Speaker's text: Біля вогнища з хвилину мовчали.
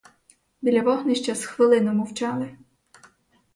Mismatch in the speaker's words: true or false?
false